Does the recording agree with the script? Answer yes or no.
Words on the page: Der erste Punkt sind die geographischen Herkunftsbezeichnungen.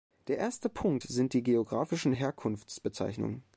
yes